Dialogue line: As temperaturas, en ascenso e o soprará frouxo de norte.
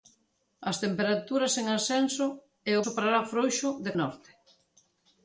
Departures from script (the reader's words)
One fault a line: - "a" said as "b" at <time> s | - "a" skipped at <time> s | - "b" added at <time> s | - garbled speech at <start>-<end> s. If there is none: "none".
none